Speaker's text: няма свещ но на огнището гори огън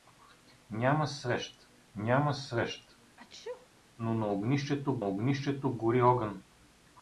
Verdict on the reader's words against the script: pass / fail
fail